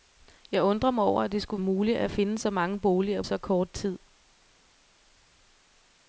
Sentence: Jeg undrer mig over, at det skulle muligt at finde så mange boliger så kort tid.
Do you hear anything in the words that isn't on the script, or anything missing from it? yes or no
no